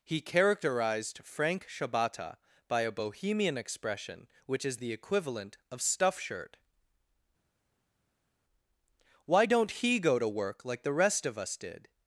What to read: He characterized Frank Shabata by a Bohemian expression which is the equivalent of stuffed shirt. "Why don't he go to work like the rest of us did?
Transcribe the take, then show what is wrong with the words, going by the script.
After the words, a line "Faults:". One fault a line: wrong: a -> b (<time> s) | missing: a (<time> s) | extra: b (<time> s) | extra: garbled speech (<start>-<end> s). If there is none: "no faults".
He characterized Frank Shabata by a Bohemian expression which is the equivalent of stuff shirt. "Why don't he go to work like the rest of us did?
Faults:
wrong: stuffed -> stuff (5.8 s)